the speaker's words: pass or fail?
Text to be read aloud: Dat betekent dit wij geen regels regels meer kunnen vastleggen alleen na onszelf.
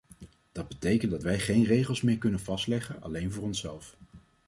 fail